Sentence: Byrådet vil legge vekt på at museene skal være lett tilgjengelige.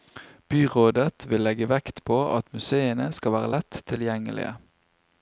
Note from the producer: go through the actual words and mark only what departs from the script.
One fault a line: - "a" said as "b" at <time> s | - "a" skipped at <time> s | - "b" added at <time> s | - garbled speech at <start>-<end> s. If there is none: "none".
none